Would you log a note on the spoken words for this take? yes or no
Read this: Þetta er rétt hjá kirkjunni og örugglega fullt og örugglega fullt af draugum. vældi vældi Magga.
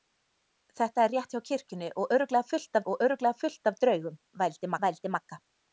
no